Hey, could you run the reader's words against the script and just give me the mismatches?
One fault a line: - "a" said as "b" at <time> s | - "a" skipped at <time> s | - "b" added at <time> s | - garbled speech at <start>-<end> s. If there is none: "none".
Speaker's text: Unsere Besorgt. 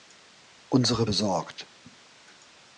none